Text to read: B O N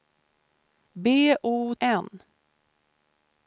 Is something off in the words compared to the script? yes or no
no